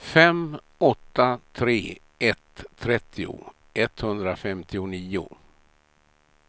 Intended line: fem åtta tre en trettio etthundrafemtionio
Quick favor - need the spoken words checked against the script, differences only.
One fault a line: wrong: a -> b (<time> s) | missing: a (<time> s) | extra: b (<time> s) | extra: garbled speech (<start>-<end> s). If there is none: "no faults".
wrong: en -> ett (2.2 s)